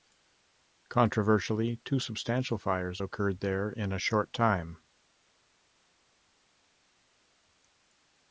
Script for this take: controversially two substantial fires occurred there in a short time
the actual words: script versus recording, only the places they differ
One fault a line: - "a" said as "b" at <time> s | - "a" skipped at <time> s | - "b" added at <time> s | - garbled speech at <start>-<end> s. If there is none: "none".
none